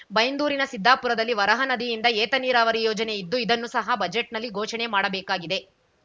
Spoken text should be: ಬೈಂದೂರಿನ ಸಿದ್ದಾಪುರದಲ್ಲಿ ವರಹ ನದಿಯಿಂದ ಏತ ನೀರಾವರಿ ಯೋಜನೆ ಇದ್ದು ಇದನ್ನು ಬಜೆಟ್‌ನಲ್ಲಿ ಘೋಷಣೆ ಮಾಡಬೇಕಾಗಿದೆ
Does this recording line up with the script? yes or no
no